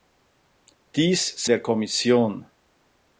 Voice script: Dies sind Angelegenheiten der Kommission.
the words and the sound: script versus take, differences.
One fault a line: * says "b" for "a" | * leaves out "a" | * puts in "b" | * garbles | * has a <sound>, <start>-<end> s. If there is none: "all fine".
* leaves out "sind Angelegenheiten"